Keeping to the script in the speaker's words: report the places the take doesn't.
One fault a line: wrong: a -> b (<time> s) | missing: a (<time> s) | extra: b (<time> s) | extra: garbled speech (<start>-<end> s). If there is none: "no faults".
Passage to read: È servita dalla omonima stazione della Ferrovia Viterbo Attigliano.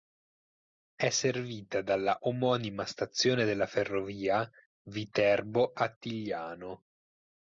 no faults